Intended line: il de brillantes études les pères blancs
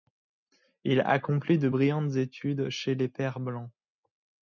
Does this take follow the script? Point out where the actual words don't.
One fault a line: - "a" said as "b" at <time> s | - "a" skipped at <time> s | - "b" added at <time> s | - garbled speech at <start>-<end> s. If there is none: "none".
- "accomplit" added at 1.0 s
- "chez" added at 2.7 s